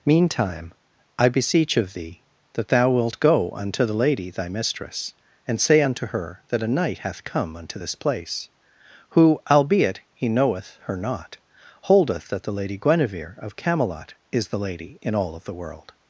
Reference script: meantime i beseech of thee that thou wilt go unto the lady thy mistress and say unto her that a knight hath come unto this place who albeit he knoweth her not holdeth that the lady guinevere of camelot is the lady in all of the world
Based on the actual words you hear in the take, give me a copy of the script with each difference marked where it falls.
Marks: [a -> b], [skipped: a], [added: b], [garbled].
meantime i beseech of thee that thou wilt go unto the lady thy mistress and say unto her that a knight hath come unto this place who albeit he knoweth her not holdeth that the lady guinevere of camelot is the lady in all of the world